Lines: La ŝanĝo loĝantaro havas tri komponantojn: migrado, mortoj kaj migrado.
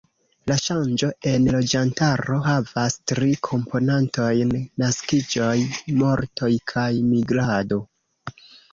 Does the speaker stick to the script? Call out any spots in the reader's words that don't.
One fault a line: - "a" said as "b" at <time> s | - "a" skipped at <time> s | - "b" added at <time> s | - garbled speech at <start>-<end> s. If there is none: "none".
- "en" added at 1.3 s
- "migrado" said as "naskiĝoj" at 4.9 s